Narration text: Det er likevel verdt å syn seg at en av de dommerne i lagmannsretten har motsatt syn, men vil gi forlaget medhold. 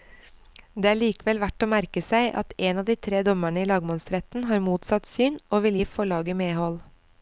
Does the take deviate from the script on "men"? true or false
true